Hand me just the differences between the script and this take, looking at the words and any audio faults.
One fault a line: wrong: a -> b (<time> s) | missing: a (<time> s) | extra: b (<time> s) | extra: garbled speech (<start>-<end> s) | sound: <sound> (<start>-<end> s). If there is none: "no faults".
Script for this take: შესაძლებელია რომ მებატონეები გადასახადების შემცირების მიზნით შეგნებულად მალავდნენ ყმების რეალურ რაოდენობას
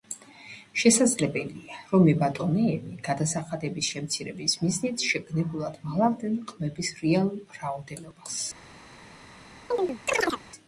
sound: chirp (9.7-10.4 s)